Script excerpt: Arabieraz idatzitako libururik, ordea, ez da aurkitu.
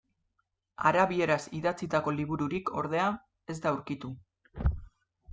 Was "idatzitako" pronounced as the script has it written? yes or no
yes